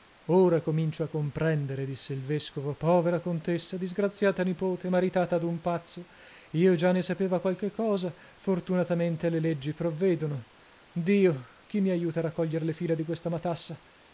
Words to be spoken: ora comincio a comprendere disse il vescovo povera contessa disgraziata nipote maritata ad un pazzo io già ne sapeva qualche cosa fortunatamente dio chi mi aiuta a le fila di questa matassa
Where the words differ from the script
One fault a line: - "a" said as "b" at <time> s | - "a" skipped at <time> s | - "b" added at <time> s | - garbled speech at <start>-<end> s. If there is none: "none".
- "le leggi provvedono" added at 9.3 s
- "raccoglier" added at 12.2 s